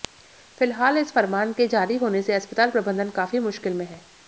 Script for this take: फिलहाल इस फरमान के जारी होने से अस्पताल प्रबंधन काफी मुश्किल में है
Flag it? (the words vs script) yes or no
no